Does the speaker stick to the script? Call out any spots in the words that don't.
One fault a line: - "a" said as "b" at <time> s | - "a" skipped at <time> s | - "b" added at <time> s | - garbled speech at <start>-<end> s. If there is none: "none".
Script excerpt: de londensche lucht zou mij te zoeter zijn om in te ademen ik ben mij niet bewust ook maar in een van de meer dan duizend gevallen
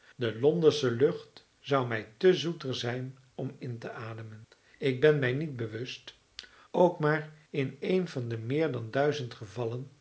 none